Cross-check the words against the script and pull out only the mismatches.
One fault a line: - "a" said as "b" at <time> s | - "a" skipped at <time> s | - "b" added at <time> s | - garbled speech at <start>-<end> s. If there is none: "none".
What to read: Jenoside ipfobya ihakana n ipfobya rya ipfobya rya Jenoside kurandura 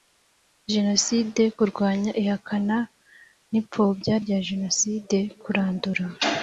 - "ipfobya" said as "kurwanya" at 1.6 s
- "ipfobya rya" skipped at 4.4 s